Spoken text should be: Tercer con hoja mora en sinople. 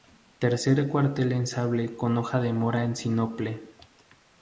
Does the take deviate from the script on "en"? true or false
false